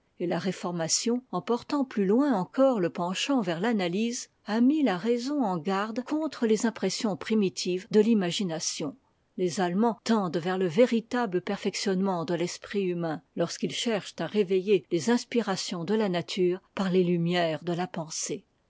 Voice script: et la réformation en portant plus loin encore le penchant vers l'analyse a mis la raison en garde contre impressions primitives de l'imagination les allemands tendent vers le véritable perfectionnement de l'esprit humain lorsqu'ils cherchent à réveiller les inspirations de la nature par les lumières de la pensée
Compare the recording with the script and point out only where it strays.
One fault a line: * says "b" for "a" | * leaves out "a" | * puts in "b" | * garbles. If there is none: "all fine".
* puts in "les"